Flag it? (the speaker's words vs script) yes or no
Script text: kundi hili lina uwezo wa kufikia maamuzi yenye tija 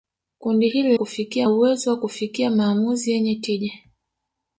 yes